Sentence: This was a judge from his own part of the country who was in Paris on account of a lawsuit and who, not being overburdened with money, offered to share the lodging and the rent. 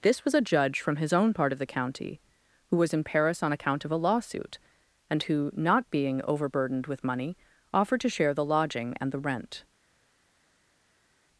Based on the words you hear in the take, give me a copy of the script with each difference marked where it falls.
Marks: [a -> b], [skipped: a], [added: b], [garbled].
This was a judge from his own part of the [country -> county] who was in Paris on account of a lawsuit and who, not being overburdened with money, offered to share the lodging and the rent.